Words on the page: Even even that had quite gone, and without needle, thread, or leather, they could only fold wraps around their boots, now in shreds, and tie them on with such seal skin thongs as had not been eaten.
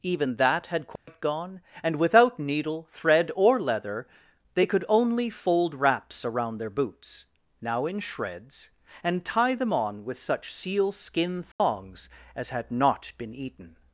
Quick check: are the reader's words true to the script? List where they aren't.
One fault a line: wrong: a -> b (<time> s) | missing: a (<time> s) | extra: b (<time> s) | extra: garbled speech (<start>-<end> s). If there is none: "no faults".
missing: even (0.4 s)